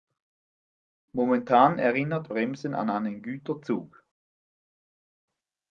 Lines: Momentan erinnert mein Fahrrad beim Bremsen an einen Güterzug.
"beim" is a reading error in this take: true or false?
true